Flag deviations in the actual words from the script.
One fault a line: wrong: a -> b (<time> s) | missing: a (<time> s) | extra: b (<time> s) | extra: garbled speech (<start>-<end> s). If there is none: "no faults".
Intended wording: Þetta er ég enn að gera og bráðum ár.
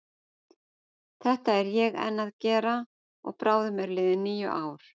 extra: eru liðin níu (3.8 s)